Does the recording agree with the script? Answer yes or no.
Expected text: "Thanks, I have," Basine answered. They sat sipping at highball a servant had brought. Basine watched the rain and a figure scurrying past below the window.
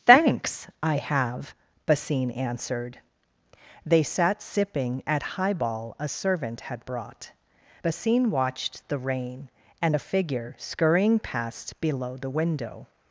yes